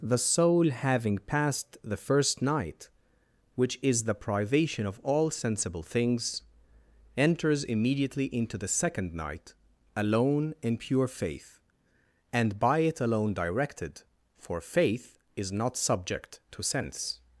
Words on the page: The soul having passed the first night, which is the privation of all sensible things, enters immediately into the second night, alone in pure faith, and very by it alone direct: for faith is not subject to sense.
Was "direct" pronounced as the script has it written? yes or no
no